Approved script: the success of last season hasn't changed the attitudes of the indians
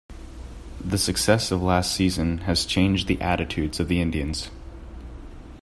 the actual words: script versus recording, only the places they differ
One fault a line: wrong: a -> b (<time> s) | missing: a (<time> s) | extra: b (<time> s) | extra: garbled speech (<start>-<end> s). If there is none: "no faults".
wrong: hasn't -> has (2.4 s)